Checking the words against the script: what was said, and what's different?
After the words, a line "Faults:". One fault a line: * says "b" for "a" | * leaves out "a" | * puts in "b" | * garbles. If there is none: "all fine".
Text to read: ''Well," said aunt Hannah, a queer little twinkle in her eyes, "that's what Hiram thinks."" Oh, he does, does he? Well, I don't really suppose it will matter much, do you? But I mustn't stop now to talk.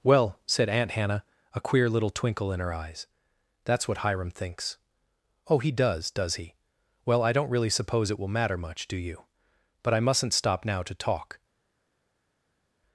''Well," said aunt Hannah, a queer little twinkle in her eyes, "that's what Hiram thinks."" Oh, he does, does he? Well, I don't really suppose it will matter much, do you? But I mustn't stop now to talk.
Faults:
all fine